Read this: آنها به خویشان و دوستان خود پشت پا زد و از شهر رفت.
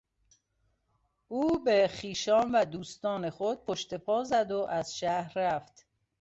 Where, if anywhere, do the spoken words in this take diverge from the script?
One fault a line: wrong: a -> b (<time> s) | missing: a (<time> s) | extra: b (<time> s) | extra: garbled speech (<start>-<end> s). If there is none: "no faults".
wrong: آنها -> او (1.3 s)